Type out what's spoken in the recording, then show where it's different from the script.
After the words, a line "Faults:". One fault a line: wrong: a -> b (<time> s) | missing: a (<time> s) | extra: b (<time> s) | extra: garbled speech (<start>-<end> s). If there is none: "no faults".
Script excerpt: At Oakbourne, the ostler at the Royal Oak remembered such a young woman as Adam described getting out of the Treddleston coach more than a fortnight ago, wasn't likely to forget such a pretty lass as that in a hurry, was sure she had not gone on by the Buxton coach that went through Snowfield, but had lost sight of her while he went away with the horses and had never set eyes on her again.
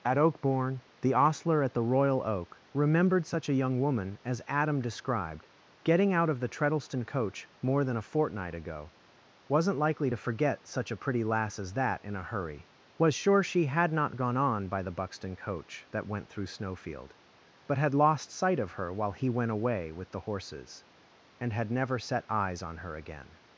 At Oakbourne, the ostler at the Royal Oak remembered such a young woman as Adam described getting out of the Treddleston coach more than a fortnight ago, wasn't likely to forget such a pretty lass as that in a hurry, was sure she had not gone on by the Buxton coach that went through Snowfield, but had lost sight of her while he went away with the horses and had never set eyes on her again.
Faults:
no faults